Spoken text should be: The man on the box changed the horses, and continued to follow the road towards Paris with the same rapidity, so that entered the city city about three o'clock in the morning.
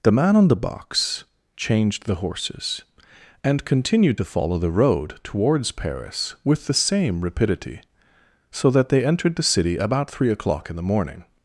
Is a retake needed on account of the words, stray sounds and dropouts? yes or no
yes